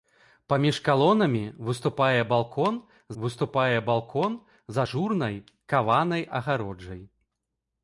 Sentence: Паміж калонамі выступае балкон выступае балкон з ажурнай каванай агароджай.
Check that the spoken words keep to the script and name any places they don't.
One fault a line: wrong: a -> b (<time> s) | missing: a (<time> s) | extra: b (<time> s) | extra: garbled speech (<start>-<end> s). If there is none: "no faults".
no faults